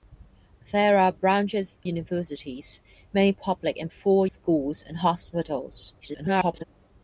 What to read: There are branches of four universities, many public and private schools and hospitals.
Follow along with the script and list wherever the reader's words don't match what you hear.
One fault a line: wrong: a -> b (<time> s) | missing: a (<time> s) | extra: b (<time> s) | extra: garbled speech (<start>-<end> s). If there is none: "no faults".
missing: of four (1.8 s)
wrong: private -> four (3.9 s)
extra: garbled speech (6.0-6.6 s)